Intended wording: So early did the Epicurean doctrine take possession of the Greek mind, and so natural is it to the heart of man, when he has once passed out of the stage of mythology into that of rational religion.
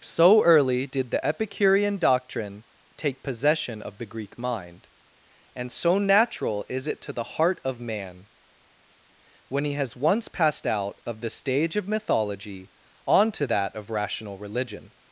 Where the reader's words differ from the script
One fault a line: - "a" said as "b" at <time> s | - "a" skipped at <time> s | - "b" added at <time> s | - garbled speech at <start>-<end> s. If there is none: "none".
- "into" said as "onto" at 13.1 s